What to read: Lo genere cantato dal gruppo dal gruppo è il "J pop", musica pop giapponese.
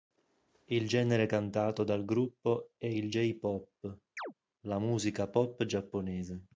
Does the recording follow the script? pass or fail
fail